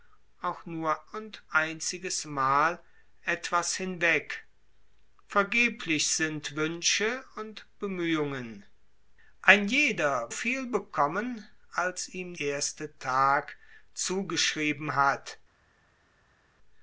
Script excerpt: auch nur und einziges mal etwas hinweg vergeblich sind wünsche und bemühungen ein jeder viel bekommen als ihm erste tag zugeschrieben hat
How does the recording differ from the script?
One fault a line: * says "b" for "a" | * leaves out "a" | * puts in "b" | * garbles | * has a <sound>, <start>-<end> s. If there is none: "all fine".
all fine